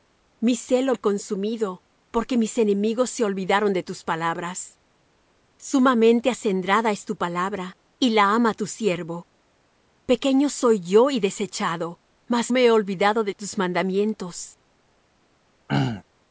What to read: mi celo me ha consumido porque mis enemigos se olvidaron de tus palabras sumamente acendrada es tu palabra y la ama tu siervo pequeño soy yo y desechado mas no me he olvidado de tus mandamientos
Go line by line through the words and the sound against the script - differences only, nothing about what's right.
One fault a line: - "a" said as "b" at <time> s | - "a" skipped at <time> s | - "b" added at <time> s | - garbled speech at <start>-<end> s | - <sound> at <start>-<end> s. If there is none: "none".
- "me" skipped at 0.9 s
- "no" skipped at 12.5 s
- throat clearing at 15.7-16.0 s